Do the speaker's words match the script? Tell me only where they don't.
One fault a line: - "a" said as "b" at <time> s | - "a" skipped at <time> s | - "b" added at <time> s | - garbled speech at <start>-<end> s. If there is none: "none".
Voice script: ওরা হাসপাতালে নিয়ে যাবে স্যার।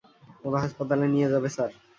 none